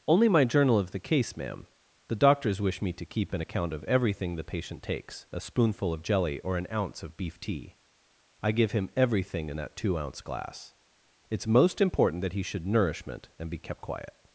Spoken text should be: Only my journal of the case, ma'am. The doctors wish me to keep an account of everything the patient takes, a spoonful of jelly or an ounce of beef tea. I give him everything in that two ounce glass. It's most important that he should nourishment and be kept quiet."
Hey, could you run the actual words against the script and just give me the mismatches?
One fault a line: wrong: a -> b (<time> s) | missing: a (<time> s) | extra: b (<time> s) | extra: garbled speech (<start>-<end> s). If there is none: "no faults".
no faults